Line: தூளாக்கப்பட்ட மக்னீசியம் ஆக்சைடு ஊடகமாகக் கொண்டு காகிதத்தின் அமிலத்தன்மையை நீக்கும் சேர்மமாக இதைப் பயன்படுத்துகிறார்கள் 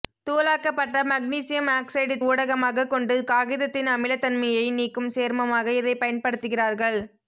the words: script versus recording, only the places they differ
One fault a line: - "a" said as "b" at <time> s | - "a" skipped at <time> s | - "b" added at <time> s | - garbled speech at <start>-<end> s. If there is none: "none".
none